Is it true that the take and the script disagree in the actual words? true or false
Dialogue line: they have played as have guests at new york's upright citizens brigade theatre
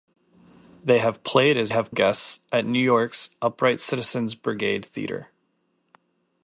false